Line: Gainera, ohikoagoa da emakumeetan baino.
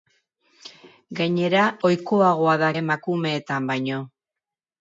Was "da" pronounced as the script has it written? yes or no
yes